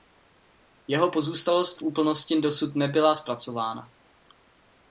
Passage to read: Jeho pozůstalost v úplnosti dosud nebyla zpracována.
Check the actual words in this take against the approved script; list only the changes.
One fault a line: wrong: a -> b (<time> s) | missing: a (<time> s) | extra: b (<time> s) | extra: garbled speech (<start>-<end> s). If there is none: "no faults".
no faults